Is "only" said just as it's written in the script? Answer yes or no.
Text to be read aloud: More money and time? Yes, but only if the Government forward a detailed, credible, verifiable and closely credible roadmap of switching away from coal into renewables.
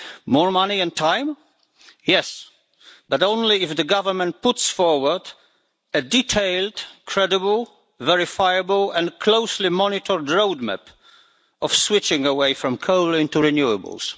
yes